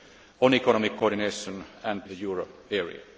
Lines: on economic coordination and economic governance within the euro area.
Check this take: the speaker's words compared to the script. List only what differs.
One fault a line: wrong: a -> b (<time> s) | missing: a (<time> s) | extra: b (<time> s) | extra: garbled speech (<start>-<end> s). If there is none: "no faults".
missing: economic governance within (2.0 s)